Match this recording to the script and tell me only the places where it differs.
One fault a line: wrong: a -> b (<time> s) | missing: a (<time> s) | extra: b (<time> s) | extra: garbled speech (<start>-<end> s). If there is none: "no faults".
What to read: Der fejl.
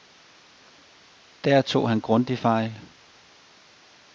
extra: tog han grundigt (1.6 s)